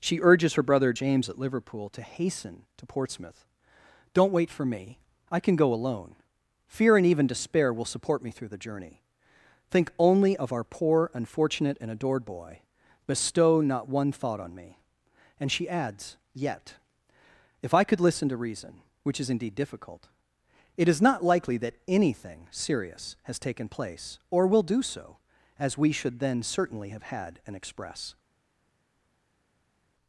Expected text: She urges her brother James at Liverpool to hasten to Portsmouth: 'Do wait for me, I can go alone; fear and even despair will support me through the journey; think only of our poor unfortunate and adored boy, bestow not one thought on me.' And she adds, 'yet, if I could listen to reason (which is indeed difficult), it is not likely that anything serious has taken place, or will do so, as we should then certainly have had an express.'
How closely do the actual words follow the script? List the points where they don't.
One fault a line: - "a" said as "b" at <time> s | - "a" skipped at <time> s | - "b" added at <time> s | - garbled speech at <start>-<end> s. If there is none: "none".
- "Do" said as "Don't" at 4.1 s